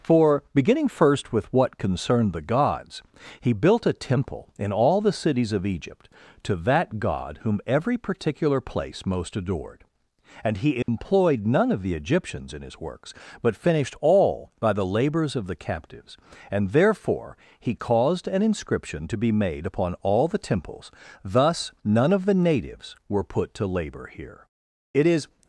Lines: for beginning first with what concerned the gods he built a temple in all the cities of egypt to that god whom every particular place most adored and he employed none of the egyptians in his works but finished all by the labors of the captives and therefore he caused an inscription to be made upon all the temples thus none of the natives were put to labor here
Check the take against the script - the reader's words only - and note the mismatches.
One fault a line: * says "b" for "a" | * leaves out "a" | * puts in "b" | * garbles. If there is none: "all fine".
* puts in "it is"